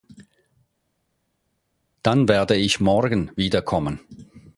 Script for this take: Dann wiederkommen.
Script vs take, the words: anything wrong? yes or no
yes